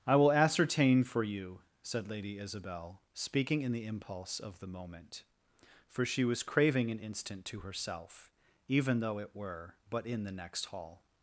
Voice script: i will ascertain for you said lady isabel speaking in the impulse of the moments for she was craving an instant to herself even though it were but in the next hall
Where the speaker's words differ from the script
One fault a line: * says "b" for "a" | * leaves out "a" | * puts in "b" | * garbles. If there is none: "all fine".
* says "moment" for "moments"